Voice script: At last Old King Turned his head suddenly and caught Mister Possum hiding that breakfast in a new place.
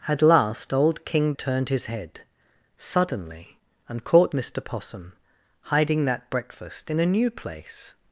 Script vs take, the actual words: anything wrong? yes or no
no